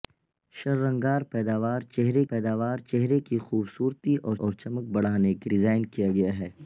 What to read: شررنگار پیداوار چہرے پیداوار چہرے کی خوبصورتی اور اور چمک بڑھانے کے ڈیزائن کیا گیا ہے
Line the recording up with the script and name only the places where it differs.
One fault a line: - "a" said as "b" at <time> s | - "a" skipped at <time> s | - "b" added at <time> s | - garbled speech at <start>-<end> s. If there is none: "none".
none